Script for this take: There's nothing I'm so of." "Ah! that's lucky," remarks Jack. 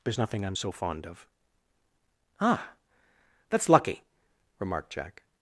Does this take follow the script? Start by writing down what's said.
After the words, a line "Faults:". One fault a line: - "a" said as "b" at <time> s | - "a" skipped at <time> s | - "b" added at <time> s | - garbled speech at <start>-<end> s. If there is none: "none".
There's nothing I'm so fond of." "Ah! that's lucky," remarked Jack.
Faults:
- "fond" added at 0.7 s
- "remarks" said as "remarked" at 4.6 s